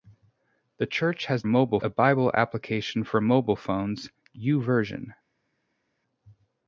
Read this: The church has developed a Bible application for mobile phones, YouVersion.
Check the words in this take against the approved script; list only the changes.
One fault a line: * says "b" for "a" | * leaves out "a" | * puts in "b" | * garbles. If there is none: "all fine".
* says "mobile" for "developed"